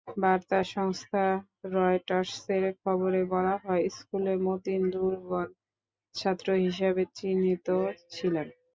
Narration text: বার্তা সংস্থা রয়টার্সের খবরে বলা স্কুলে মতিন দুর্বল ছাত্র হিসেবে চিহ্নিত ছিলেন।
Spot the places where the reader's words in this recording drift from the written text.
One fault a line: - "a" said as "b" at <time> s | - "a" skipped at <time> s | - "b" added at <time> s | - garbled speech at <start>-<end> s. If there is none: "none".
- "হয়" added at 3.6 s